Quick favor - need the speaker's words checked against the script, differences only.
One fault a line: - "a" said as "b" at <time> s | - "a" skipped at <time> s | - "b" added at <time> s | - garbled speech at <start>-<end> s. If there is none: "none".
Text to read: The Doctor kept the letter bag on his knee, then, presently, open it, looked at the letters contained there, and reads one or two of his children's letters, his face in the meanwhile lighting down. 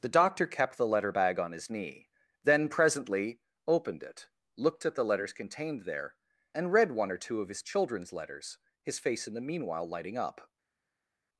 - "open" said as "opened" at 3.7 s
- "reads" said as "read" at 6.7 s
- "down" said as "up" at 10.2 s